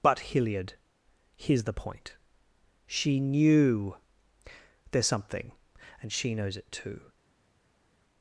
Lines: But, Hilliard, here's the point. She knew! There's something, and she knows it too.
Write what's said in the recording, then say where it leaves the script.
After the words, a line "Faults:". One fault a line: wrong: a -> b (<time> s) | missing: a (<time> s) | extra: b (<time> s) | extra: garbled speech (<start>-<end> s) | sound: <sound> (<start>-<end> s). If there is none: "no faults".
But, Hilliard, here's the point. She knew! There's something, and she knows it too.
Faults:
no faults